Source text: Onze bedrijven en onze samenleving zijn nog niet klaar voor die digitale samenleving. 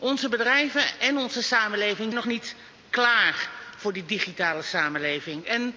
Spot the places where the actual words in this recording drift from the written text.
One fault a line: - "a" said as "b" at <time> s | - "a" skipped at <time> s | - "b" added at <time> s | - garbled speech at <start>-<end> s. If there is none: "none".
- "zijn" skipped at 2.1 s